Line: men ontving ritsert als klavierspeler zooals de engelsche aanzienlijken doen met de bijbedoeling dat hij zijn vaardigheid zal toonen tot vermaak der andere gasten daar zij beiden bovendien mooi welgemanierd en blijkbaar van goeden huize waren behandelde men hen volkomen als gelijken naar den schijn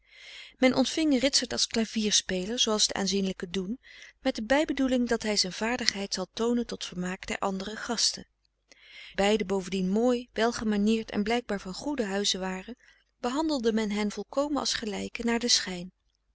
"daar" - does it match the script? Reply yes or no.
no